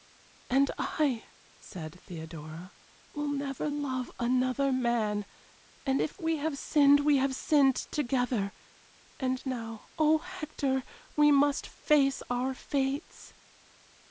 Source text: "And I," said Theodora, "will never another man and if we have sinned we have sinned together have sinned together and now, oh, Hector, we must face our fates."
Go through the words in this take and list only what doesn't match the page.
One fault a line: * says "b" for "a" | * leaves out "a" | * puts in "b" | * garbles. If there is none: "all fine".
* puts in "love"
* leaves out "have sinned together"